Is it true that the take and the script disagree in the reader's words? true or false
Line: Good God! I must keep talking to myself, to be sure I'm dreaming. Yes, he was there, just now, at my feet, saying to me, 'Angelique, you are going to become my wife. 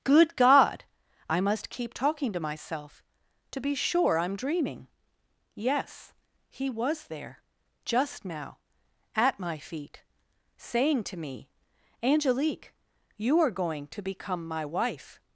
false